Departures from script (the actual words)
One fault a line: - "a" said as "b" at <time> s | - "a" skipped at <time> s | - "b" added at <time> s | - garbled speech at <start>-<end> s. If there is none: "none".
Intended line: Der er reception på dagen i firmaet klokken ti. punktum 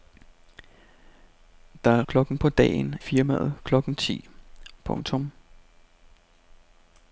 - "reception" said as "klokken" at 2.1 s
- "i" skipped at 2.9 s